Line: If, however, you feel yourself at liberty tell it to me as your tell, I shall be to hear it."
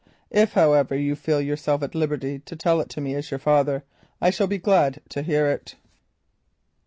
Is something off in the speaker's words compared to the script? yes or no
yes